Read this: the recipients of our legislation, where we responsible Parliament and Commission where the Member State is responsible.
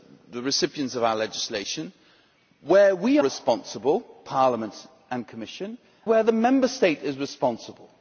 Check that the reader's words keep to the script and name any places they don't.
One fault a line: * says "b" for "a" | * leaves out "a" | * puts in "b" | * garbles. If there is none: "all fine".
all fine